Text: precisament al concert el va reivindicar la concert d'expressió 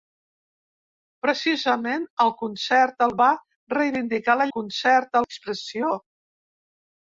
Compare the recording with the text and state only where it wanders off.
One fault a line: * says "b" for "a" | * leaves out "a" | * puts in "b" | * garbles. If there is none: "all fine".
all fine